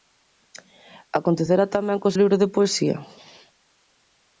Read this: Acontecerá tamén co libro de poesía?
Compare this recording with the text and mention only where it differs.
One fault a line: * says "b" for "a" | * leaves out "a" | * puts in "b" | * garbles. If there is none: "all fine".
all fine